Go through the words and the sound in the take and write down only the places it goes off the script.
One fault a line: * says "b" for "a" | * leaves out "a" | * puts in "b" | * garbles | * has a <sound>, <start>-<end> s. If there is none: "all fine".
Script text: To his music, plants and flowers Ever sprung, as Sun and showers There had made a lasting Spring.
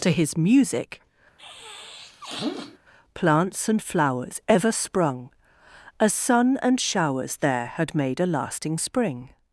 * has a sniff, 1.4-2.8 s